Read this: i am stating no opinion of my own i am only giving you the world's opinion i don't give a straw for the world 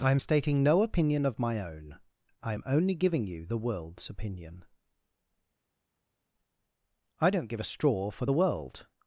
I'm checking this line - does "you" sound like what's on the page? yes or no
yes